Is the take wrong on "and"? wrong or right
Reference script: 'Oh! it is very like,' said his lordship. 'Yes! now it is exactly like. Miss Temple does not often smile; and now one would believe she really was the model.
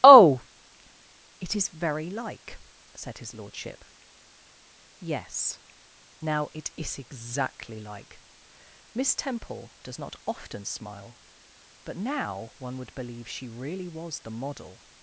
wrong